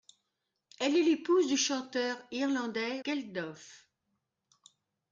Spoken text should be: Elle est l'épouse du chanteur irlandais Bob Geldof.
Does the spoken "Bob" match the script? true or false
false